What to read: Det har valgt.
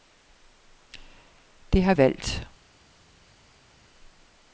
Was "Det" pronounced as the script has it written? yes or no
yes